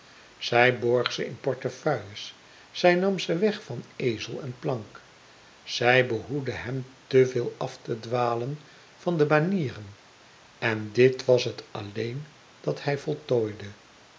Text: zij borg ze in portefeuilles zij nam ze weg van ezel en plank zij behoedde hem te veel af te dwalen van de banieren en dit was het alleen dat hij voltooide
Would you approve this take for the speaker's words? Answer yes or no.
yes